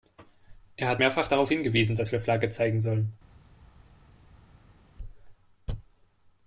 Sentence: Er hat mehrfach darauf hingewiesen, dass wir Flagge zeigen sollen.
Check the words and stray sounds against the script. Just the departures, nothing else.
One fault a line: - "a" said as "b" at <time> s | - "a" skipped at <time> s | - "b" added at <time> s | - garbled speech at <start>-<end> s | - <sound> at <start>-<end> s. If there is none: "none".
none